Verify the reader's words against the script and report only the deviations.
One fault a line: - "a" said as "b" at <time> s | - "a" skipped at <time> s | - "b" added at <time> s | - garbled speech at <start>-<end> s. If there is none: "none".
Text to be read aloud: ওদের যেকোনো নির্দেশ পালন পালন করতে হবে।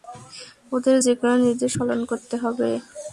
- "পালন" skipped at 2.0 s